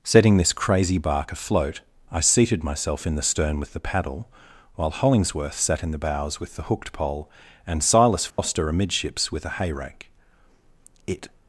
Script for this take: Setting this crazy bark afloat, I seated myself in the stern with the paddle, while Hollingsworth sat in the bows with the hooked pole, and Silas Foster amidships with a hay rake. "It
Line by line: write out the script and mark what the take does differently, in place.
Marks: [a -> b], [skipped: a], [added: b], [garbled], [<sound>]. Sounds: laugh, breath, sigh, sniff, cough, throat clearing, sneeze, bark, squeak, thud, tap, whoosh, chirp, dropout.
Setting this crazy bark afloat, I seated myself in the stern with the paddle, while Hollingsworth sat in the bows with the hooked pole, and Silas Foster [dropout] amidships with a hay rake. "It